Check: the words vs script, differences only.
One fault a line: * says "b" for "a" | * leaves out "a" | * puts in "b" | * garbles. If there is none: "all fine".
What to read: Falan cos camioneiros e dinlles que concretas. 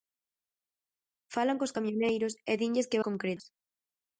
all fine